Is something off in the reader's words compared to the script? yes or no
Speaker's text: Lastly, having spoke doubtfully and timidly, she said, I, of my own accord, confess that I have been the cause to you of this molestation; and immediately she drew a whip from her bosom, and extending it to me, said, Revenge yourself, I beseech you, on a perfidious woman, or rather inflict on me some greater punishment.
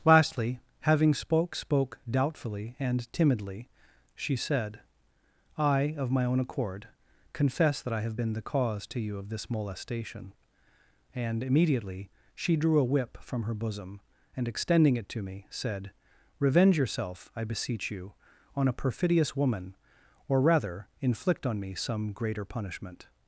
yes